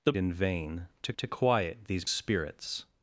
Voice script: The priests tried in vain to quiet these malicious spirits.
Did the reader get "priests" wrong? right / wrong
wrong